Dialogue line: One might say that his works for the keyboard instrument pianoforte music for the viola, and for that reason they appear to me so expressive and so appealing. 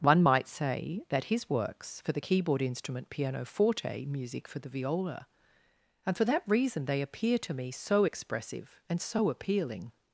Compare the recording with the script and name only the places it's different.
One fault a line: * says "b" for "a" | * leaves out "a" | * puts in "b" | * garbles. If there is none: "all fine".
all fine